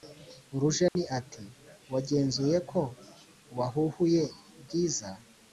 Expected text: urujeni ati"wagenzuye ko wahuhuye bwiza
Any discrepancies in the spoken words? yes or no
no